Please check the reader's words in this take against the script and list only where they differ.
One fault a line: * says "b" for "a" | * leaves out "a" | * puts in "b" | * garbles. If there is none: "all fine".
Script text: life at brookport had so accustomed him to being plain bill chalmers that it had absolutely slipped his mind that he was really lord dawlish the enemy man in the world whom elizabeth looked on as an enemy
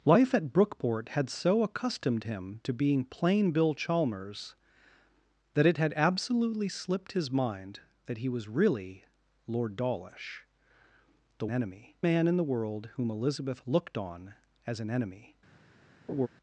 all fine